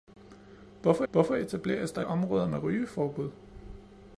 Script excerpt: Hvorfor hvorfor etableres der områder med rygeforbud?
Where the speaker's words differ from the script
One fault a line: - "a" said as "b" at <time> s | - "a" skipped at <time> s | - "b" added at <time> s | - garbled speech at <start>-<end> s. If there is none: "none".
none